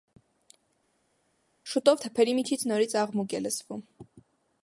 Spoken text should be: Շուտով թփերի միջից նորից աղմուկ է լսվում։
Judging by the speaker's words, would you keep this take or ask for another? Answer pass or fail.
pass